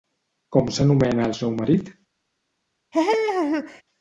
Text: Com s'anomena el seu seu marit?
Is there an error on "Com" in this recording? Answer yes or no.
no